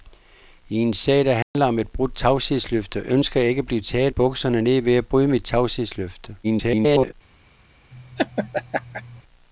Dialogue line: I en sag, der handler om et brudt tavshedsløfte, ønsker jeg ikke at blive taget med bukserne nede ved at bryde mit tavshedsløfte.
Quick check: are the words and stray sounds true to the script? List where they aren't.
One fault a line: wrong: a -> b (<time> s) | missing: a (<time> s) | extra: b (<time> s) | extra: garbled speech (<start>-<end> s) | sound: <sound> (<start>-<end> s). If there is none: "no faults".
sound: dropout (1.4-1.5 s)
missing: med (4.1 s)
extra: garbled speech (6.4-7.1 s)
sound: laugh (7.9-9.2 s)